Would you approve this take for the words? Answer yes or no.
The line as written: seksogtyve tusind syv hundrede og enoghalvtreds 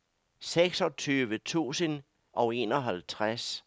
no